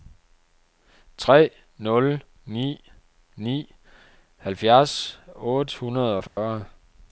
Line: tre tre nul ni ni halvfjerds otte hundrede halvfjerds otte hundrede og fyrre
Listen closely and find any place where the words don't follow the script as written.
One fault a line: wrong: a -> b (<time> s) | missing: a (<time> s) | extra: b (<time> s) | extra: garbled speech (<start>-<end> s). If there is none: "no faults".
missing: tre (1.5 s)
missing: halvfjerds otte hundrede (6.2 s)